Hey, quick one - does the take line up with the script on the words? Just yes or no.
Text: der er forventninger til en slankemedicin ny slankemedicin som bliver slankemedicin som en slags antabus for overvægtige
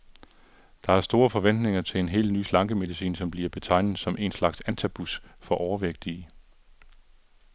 no